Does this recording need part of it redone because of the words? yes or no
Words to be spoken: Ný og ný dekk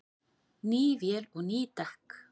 yes